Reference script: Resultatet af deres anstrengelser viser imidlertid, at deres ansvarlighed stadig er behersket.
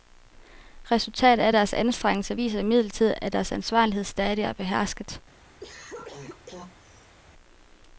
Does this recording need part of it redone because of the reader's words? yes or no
no